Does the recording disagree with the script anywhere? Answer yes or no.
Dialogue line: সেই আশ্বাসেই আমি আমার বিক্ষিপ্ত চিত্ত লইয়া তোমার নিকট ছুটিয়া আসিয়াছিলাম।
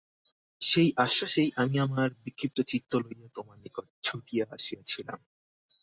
no